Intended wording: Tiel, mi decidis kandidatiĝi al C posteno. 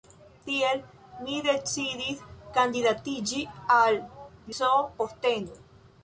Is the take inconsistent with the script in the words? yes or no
no